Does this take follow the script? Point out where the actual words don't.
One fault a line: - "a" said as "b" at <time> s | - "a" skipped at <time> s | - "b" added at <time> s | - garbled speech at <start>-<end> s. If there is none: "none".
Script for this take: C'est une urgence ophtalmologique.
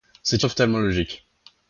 - "une urgence" skipped at 0.5 s